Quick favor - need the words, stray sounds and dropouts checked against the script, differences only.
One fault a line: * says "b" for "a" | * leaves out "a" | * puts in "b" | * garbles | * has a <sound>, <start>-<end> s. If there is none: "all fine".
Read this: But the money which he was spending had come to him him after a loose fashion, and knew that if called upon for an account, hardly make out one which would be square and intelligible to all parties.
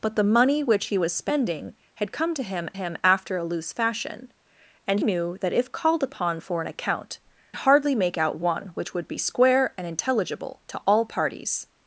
all fine